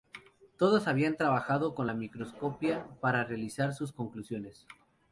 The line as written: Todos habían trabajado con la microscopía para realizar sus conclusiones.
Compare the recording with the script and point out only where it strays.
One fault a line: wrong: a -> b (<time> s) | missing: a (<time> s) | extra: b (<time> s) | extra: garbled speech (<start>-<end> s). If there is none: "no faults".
no faults